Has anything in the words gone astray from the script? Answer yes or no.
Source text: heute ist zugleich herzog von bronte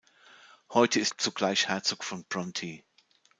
no